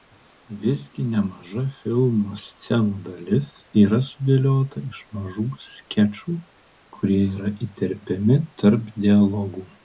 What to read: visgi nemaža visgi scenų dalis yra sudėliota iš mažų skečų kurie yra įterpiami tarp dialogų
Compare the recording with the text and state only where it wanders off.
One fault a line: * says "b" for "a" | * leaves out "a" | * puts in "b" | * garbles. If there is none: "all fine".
* says "filmo" for "visgi"